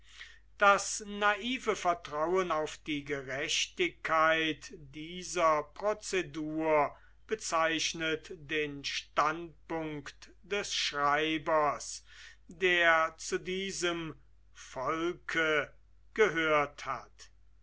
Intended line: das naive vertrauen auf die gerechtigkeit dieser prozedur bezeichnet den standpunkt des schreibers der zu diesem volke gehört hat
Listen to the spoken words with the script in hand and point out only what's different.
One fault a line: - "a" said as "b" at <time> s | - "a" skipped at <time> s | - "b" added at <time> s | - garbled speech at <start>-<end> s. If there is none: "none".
none